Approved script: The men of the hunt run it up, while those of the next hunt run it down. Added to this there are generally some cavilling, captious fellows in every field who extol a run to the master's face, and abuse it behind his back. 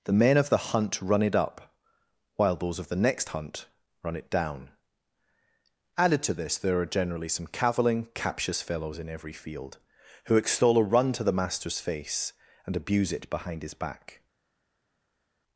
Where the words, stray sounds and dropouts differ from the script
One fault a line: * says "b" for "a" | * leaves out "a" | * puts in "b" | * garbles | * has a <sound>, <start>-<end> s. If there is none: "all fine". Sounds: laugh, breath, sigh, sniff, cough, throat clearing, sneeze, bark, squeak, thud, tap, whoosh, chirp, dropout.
all fine